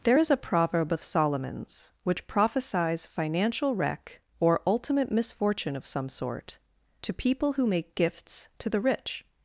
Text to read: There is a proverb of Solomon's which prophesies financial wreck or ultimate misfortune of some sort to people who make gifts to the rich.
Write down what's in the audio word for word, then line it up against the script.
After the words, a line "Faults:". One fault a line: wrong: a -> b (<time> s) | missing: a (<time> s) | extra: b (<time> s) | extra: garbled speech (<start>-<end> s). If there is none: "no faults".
There is a proverb of Solomon's which prophesies financial wreck or ultimate misfortune of some sort to people who make gifts to the rich.
Faults:
no faults